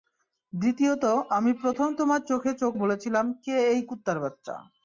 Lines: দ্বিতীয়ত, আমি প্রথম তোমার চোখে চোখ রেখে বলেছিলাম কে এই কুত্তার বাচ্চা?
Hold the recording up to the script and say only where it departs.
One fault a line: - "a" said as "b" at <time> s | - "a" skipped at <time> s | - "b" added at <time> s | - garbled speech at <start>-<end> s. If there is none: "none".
- "রেখে" skipped at 2.7 s